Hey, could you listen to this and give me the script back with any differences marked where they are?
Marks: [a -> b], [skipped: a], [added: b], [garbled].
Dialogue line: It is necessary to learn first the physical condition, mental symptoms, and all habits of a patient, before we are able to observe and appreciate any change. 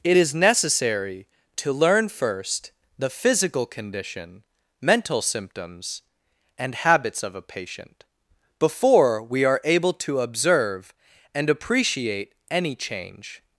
It is necessary to learn first the physical condition, mental symptoms, and [skipped: all] habits of a patient, before we are able to observe and appreciate any change.